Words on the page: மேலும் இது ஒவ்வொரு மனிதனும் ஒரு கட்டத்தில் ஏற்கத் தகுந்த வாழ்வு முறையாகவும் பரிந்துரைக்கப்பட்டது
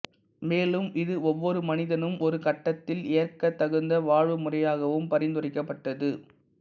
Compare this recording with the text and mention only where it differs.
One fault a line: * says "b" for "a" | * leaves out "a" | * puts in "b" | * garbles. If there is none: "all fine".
all fine